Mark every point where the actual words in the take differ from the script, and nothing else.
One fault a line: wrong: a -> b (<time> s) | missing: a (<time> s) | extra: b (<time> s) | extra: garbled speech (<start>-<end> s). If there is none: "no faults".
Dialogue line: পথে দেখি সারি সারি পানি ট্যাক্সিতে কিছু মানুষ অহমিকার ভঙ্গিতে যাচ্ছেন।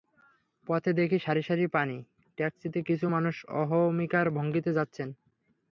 no faults